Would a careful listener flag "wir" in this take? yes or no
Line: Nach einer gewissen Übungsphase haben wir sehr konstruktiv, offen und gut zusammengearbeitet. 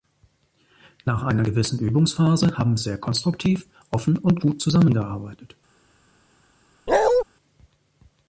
yes